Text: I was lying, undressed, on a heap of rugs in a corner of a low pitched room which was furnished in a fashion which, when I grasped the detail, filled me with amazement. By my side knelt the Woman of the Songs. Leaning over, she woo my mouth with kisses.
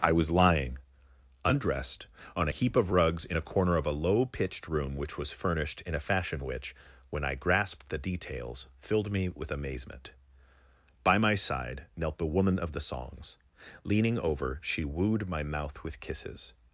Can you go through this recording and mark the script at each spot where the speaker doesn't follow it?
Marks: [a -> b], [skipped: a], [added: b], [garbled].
I was lying, undressed, on a heap of rugs in a corner of a low pitched room which was furnished in a fashion which, when I grasped the [detail, -> details] filled me with amazement. By my side knelt the Woman of the Songs. Leaning over, she [woo -> wooed] my mouth with kisses.